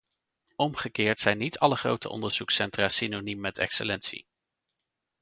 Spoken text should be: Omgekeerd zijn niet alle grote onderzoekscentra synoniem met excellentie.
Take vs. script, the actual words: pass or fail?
pass